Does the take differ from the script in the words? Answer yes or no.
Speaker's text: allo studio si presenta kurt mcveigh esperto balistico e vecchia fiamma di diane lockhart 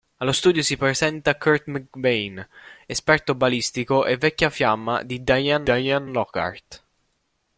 yes